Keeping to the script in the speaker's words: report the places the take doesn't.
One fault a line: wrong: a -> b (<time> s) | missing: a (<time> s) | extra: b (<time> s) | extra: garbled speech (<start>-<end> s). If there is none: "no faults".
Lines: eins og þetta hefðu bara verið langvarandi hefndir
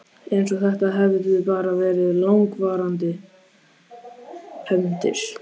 no faults